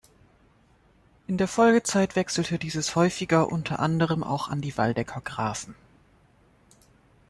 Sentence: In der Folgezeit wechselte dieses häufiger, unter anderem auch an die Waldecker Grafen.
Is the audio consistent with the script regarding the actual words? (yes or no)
yes